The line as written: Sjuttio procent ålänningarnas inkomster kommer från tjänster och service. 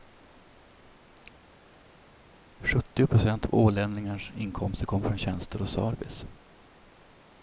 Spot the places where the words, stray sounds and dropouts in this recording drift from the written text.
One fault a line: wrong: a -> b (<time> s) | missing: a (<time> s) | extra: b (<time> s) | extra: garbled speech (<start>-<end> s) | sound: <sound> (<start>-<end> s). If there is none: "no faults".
extra: av (3.4 s)